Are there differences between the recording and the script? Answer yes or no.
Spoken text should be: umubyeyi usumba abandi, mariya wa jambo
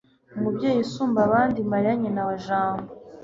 yes